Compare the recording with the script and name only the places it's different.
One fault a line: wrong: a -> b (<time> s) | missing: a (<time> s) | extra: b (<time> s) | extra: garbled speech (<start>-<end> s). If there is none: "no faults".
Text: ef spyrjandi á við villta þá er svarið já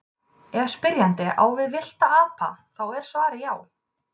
extra: apa (2.2 s)